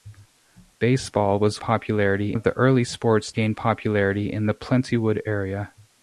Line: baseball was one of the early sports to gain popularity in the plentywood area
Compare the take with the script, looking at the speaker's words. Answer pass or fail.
fail